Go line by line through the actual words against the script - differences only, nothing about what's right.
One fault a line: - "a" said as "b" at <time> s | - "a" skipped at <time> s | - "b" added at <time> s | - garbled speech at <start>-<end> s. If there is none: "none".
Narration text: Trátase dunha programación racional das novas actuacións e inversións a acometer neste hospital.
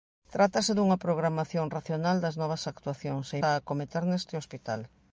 - "inversións" skipped at 3.4 s